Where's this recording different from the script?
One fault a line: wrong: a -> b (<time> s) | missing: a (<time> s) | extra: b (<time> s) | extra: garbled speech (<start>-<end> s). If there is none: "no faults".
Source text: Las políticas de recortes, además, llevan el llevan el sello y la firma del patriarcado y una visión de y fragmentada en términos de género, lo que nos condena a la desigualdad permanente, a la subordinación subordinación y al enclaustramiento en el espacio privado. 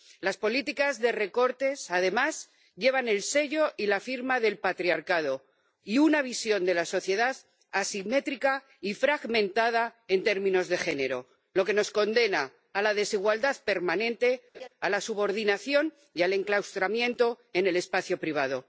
missing: llevan el (3.2 s)
extra: la sociedad asimétrica (6.7 s)
missing: subordinación (15.9 s)